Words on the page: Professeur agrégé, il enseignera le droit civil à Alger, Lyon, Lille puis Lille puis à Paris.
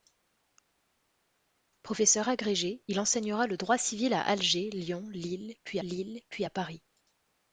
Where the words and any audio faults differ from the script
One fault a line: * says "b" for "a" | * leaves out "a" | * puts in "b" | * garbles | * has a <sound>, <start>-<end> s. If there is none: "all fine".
all fine